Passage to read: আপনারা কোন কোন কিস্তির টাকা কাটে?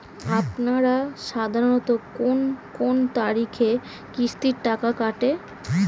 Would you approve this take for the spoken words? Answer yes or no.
no